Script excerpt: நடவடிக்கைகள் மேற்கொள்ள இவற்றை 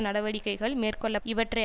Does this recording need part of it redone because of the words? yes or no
no